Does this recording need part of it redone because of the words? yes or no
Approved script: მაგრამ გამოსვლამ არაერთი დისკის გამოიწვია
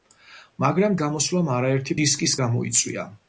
no